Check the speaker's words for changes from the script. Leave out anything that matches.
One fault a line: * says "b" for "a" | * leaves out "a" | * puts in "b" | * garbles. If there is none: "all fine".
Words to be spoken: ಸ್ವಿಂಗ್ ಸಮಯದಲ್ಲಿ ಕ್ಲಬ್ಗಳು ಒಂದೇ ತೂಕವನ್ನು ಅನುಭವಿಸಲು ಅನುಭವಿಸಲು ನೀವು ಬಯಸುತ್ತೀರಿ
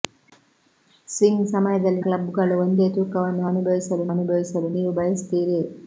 all fine